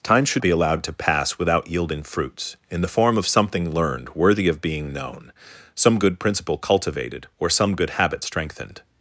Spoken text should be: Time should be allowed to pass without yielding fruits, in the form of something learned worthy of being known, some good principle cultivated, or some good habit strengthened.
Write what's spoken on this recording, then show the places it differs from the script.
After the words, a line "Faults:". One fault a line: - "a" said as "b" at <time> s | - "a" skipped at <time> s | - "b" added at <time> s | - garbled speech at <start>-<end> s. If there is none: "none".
Time should be allowed to pass without yielding fruits, in the form of something learned worthy of being known, some good principle cultivated, or some good habit strengthened.
Faults:
none